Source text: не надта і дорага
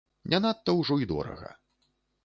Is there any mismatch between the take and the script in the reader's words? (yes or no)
yes